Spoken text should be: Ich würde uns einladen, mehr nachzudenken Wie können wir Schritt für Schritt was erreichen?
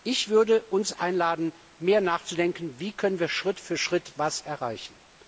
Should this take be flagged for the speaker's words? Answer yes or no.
no